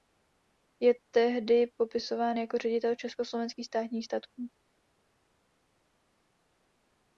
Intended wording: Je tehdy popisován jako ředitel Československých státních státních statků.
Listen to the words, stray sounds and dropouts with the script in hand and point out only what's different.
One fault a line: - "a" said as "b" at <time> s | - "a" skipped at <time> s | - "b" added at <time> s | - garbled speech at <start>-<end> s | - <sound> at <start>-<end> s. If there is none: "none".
- "státních" skipped at 4.0 s